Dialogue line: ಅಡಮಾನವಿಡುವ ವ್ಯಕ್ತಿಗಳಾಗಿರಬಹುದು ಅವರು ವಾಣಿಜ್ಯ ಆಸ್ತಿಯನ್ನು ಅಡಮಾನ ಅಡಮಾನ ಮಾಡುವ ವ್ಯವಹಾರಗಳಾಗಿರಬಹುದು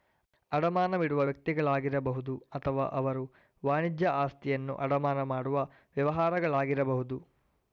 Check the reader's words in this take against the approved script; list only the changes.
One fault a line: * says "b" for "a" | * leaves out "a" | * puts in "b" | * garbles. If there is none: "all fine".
* puts in "ಅಥವಾ"
* leaves out "ಅಡಮಾನ"